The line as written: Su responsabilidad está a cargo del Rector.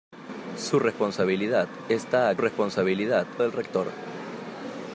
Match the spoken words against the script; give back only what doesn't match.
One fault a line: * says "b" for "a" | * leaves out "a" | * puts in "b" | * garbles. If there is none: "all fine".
* says "responsabilidad" for "cargo"